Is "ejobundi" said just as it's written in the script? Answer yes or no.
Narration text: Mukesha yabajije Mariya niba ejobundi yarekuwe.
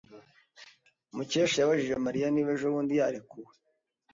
yes